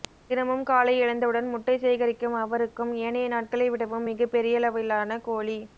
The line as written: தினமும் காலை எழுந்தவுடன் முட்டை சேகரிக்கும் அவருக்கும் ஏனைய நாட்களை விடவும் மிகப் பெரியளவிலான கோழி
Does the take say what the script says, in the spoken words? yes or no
yes